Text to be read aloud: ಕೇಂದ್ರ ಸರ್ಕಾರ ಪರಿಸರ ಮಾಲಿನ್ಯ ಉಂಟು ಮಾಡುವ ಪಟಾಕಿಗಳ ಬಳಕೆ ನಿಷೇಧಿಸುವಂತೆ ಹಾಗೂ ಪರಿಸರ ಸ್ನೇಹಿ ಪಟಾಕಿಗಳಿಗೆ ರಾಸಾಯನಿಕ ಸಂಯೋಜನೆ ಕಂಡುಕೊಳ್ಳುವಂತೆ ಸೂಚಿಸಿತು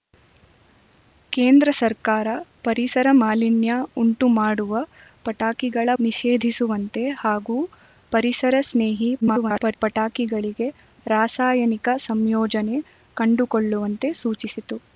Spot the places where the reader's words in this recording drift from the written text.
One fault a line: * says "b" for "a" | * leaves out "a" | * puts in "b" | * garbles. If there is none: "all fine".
* leaves out "ಬಳಕೆ"
* garbles